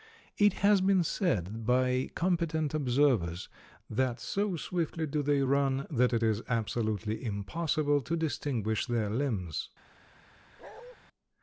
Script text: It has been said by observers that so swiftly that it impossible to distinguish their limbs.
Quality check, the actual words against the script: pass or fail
fail